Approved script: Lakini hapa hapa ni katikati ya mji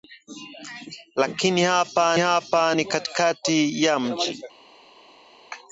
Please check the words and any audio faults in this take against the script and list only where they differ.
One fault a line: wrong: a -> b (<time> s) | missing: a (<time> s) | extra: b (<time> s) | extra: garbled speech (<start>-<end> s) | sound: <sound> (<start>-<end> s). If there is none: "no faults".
no faults